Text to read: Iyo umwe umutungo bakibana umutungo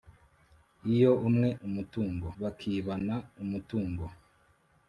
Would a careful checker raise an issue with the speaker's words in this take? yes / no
no